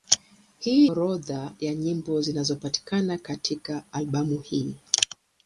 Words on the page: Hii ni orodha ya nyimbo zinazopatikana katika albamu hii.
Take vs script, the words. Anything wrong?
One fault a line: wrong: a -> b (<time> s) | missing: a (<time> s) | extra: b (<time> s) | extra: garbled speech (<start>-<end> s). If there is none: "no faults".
missing: ni (0.9 s)